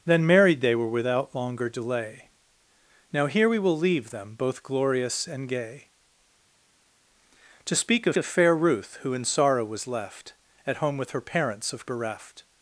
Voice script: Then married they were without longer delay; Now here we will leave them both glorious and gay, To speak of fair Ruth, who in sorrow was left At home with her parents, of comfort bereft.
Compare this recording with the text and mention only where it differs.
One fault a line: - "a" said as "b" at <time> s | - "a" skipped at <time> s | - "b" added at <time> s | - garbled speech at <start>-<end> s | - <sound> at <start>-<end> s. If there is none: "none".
- "of" added at 8.2 s
- "comfort" skipped at 11.9 s